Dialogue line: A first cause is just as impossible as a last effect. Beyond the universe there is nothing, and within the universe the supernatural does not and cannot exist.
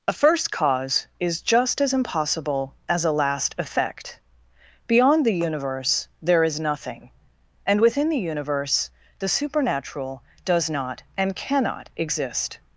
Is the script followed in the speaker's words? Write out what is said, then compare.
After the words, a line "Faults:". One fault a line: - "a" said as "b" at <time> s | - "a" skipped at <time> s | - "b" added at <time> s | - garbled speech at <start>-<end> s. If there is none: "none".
A first cause is just as impossible as a last effect. Beyond the universe there is nothing, and within the universe the supernatural does not and cannot exist.
Faults:
none